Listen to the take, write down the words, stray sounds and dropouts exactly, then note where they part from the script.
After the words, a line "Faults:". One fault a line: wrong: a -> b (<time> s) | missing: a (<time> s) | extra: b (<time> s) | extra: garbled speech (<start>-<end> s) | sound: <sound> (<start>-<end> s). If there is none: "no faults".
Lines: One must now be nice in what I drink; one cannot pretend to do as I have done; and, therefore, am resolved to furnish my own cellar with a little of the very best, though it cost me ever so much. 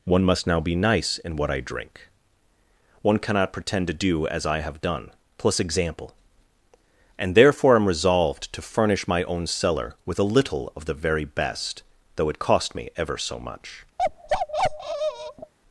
One must now be nice in what I drink; one cannot pretend to do as I have done; plus example and, therefore, am resolved to furnish my own cellar with a little of the very best, though it cost me ever so much.
Faults:
extra: plus example (5.4 s)
sound: bark (14.0-15.5 s)